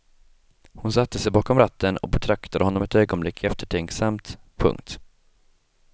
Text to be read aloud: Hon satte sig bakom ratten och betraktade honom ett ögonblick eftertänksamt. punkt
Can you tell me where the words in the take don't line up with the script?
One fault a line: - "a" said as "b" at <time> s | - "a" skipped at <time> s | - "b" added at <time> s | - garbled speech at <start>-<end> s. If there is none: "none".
none